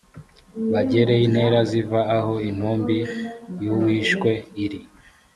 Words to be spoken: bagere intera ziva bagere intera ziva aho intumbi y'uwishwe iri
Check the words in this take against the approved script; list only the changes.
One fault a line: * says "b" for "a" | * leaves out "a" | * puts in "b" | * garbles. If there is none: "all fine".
* leaves out "bagere intera ziva"